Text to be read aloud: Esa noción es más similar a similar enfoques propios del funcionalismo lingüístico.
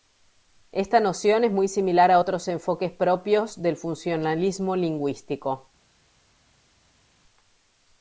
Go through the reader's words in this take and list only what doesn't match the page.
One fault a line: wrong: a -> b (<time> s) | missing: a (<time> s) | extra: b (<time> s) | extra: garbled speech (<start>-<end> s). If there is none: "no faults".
wrong: Esa -> Esta (0.7 s)
wrong: más -> muy (1.5 s)
wrong: similar -> otros (2.2 s)